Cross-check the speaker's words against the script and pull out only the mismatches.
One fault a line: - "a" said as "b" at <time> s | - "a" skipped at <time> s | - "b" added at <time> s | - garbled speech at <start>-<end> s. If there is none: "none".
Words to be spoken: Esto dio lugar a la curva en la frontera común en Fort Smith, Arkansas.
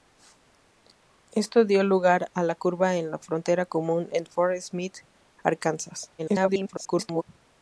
- garbled speech at 6.2-7.2 s